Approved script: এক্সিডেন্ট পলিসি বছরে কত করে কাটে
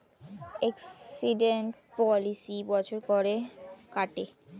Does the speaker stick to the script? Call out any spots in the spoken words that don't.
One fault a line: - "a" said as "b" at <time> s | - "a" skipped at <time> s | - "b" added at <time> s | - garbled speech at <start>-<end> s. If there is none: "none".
- "কত" skipped at 3.0 s